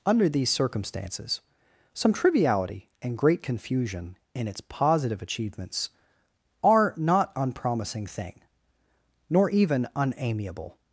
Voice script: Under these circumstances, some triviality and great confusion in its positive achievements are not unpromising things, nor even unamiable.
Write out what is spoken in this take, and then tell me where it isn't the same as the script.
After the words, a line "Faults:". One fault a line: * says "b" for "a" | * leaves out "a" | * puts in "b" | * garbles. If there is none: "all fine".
Under these circumstances, some triviality and great confusion in its positive achievements are not unpromising thing, nor even unamiable.
Faults:
* says "thing" for "things"